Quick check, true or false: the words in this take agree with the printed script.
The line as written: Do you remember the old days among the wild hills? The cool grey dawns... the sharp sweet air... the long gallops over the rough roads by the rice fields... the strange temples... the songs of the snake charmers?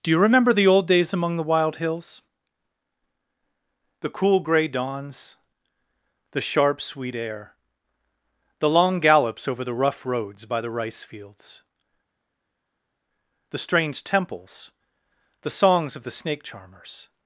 true